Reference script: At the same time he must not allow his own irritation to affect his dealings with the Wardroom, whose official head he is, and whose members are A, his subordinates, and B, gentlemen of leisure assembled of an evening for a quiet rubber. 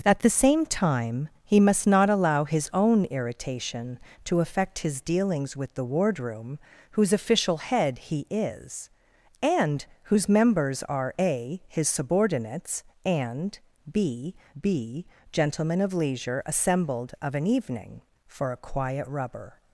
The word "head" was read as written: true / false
true